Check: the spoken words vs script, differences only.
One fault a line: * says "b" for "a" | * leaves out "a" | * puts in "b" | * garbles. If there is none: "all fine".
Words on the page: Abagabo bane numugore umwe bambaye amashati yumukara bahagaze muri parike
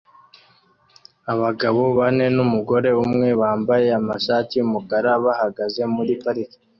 all fine